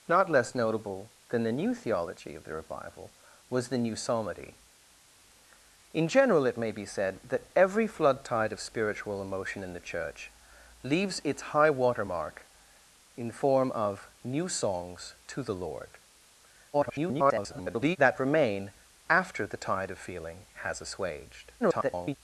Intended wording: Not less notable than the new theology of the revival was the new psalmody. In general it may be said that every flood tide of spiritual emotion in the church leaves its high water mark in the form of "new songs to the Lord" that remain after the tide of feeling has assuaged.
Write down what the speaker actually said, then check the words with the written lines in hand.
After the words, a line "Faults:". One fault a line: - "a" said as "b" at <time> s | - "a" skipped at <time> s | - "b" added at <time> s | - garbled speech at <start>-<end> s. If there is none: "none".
Not less notable than the new theology of the revival was the new psalmody. In general it may be said that every flood tide of spiritual emotion in the church leaves its high water mark in the form of "new songs to the Lord" [garbled] that remain after the tide of feeling has assuaged. [garbled]
Faults:
- garbled speech at 16.7-18.0 s
- garbled speech at 21.6-22.2 s